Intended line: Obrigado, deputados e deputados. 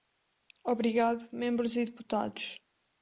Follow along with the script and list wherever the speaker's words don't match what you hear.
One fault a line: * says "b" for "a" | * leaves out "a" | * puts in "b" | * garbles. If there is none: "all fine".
* says "membros" for "deputados"